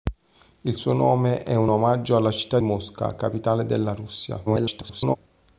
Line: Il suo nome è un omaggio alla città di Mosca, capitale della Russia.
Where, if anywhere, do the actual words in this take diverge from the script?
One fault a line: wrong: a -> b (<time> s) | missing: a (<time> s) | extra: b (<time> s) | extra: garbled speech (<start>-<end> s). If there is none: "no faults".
missing: di (2.6 s)
extra: garbled speech (4.5-5.2 s)